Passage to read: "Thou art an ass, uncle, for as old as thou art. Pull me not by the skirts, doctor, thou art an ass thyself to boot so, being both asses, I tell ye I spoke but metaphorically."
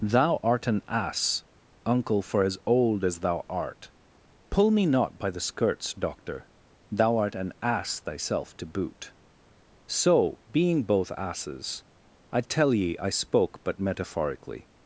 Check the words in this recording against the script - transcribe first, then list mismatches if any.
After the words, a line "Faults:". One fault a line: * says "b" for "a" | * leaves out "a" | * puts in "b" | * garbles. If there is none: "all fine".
"Thou art an ass, uncle, for as old as thou art. Pull me not by the skirts, doctor, thou art an ass thyself to boot so, being both asses, I tell ye I spoke but metaphorically."
Faults:
all fine